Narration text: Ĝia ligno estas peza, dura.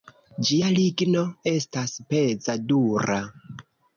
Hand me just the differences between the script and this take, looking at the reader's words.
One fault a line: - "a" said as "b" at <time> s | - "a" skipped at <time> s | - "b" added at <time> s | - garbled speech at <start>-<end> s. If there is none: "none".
none